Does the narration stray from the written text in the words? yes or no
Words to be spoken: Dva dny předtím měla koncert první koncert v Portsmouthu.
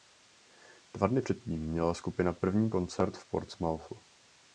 yes